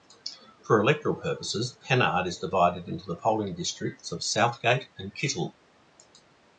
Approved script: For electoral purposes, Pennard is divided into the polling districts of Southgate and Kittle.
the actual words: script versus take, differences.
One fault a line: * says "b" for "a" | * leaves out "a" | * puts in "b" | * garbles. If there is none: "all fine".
all fine